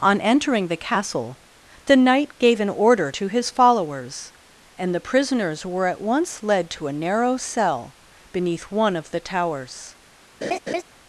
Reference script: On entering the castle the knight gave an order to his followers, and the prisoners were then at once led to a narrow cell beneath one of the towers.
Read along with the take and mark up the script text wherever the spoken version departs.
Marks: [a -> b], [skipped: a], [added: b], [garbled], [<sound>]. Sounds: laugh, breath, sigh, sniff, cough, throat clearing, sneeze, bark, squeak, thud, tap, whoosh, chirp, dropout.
On entering the castle the knight gave an order to his followers, and the prisoners were [skipped: then] at once led to a narrow cell beneath one of the towers. [laugh]